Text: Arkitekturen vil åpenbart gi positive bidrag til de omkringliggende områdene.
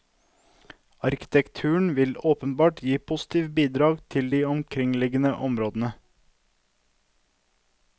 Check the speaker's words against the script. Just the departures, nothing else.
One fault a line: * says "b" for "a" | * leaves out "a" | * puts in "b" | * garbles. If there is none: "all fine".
all fine